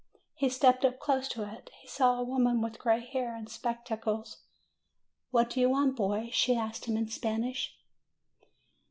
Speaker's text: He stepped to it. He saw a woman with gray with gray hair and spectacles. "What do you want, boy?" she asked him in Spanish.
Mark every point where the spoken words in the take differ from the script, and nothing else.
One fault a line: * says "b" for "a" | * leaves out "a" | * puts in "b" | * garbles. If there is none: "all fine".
* puts in "up close"
* leaves out "with gray"